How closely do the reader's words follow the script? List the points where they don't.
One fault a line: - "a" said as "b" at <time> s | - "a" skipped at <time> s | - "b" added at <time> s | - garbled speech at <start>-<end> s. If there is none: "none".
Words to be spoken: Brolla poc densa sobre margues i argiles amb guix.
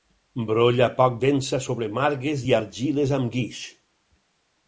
none